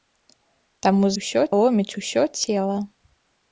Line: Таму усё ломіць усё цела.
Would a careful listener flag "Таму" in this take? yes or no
no